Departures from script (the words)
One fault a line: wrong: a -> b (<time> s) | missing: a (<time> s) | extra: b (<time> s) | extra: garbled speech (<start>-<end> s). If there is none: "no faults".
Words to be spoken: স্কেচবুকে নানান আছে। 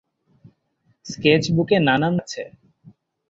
no faults